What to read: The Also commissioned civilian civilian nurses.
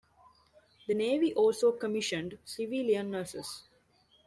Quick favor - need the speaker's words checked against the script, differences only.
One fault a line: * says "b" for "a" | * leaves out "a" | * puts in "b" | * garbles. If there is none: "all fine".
* puts in "Navy"
* leaves out "civilian"